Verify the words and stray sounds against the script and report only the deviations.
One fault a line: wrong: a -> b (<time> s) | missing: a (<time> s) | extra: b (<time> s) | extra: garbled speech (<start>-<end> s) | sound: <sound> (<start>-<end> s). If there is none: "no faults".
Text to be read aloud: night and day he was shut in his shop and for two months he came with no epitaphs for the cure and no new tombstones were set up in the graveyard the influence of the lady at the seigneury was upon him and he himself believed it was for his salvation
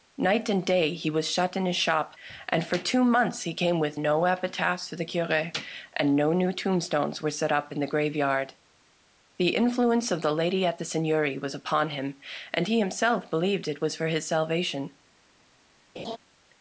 sound: laugh (16.0-16.2 s)